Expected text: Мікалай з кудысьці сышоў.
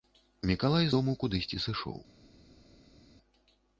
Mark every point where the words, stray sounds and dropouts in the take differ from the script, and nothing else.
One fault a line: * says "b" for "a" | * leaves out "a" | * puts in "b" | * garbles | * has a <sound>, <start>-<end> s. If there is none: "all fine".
* puts in "дому"